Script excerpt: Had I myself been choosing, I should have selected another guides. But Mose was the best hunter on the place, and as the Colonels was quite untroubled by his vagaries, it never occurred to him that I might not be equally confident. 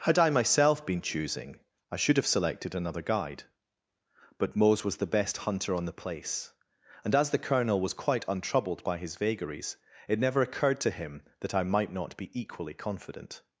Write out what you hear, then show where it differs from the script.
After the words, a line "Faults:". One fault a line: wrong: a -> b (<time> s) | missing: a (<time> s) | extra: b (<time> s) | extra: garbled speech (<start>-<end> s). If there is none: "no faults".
Had I myself been choosing, I should have selected another guide. But Mose was the best hunter on the place, and as the Colonel was quite untroubled by his vagaries, it never occurred to him that I might not be equally confident.
Faults:
wrong: guides -> guide (3.0 s)
wrong: Colonels -> Colonel (7.4 s)